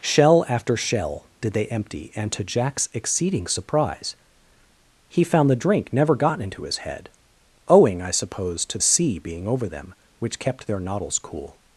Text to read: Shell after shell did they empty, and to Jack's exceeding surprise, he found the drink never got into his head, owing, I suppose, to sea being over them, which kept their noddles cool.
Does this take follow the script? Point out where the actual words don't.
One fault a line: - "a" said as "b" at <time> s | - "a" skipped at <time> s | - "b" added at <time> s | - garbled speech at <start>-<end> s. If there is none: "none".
none